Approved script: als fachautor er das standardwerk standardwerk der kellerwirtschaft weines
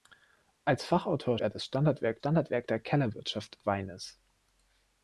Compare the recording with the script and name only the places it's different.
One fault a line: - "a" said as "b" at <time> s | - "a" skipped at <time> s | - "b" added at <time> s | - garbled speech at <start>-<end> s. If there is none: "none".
none